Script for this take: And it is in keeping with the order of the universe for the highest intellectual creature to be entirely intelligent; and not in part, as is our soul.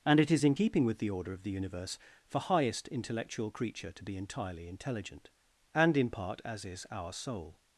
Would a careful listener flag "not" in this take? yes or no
yes